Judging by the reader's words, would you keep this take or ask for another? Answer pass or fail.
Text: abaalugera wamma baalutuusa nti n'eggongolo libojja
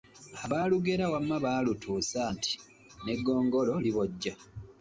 pass